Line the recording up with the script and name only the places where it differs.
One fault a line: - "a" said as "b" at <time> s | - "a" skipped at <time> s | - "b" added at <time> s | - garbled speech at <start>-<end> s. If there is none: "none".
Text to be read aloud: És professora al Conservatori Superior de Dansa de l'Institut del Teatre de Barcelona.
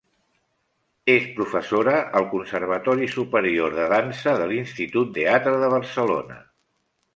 - "del" skipped at 5.1 s